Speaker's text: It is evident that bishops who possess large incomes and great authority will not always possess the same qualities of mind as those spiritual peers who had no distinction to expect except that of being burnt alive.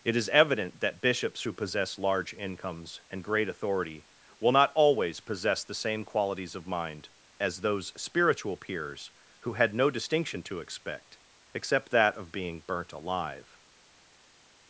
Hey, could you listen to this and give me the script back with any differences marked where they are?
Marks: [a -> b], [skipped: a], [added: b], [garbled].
It is evident that bishops who possess large incomes and great authority will not always possess the same qualities of mind as those spiritual peers who had no distinction to expect except that of being burnt alive.